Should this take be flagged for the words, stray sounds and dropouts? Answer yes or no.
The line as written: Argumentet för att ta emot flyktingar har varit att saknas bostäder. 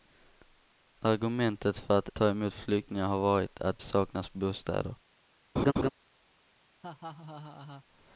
yes